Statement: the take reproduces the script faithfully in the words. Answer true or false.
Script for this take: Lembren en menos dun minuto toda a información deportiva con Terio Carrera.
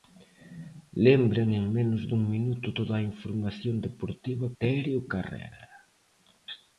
false